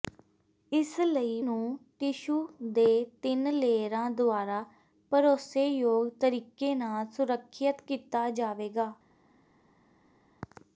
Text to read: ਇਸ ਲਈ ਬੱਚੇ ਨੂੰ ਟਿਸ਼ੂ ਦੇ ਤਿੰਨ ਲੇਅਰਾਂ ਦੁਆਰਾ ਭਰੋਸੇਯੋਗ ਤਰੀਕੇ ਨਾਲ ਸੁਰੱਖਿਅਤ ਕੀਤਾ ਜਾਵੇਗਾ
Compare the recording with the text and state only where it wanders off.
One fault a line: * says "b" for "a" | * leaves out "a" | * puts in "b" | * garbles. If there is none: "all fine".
* leaves out "ਬੱਚੇ"